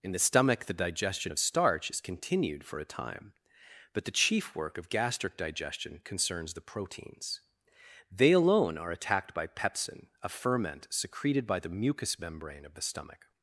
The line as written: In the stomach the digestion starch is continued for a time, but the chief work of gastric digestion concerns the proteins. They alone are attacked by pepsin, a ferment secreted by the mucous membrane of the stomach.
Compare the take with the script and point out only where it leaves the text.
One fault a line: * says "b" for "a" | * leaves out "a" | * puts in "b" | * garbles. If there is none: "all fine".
* puts in "of"